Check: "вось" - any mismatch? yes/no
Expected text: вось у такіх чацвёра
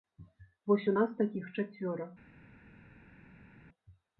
no